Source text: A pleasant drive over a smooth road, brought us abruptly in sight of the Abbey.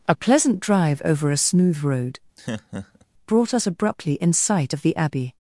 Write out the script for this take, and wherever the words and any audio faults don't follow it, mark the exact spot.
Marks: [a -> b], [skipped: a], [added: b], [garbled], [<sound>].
A pleasant drive over a smooth road, [laugh] brought us abruptly in sight of the Abbey.